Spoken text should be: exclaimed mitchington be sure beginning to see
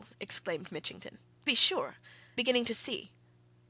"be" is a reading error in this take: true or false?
false